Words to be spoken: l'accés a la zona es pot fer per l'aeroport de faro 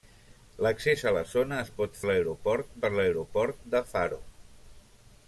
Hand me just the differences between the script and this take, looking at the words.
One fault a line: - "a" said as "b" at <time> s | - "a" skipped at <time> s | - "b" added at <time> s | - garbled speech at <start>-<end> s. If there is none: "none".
- "fer" said as "l'aeroport" at 2.1 s